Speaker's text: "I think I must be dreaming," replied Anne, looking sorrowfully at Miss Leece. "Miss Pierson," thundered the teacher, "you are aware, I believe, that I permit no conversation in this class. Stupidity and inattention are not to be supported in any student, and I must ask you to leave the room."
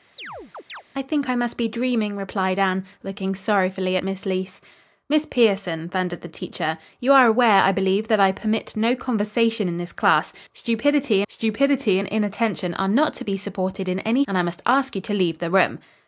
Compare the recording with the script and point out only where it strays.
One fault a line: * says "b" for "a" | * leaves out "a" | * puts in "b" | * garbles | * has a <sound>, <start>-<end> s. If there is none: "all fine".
* has a chirp, 0.2-0.8 s
* puts in "stupidity"
* leaves out "student"